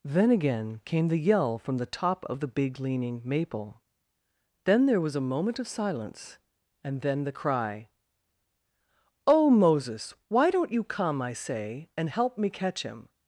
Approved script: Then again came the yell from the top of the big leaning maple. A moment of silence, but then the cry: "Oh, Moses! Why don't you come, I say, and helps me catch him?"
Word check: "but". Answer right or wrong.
wrong